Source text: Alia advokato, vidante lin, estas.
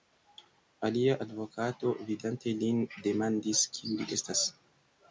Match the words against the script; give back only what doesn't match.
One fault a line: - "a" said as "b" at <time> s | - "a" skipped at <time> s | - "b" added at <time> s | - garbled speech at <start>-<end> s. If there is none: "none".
- "demandis kiu li" added at 3.1 s